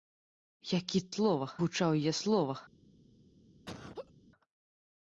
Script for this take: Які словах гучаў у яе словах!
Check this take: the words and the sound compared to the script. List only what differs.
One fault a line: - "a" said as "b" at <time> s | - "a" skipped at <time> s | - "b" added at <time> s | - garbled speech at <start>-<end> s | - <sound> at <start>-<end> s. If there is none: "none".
- laugh at 3.7-4.1 s